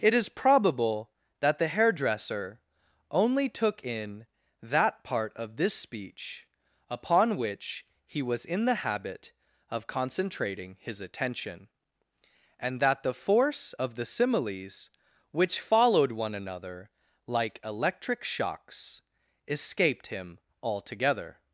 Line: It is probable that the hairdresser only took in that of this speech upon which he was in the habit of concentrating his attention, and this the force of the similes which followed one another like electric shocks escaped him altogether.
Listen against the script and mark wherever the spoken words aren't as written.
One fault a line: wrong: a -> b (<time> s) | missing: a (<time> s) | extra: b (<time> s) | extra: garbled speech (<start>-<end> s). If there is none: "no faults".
extra: part (5.0 s)
wrong: this -> that (12.8 s)